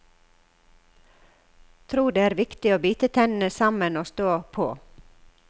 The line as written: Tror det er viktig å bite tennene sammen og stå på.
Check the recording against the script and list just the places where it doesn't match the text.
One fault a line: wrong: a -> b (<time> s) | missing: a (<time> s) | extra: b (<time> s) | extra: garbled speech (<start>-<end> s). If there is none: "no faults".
no faults